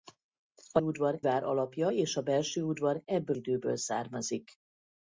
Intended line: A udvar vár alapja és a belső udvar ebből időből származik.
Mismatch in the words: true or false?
false